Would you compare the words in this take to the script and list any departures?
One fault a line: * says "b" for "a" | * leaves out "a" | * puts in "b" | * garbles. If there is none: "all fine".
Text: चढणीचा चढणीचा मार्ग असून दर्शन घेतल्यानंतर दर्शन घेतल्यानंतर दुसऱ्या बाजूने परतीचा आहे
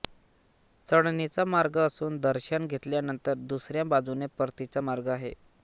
* leaves out "चढणीचा"
* leaves out "दर्शन घेतल्यानंतर"
* puts in "मार्ग"